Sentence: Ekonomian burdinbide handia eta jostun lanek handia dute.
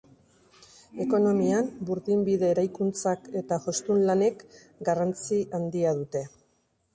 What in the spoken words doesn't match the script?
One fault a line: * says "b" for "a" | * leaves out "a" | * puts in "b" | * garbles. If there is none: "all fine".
* says "eraikuntzak" for "handia"
* puts in "garrantzi"